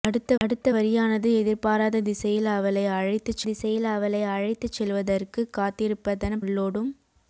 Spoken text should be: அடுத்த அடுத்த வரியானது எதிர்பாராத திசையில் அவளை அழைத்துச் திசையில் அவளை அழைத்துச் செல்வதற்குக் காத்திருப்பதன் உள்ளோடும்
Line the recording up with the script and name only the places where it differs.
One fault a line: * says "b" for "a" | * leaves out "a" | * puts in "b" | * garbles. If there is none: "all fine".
all fine